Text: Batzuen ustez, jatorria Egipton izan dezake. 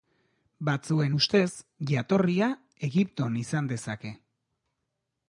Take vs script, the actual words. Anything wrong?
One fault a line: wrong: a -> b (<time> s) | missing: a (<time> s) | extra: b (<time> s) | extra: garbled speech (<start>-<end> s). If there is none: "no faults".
no faults